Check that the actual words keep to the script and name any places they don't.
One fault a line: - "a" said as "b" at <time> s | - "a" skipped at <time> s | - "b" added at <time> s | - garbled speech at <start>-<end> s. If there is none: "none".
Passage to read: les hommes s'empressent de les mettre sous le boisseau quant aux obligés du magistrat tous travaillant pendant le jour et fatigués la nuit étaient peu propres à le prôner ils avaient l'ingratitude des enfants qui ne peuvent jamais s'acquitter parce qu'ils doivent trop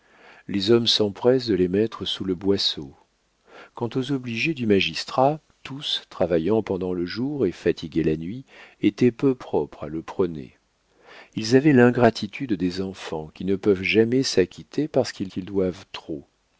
- "qu'ils" added at 15.3 s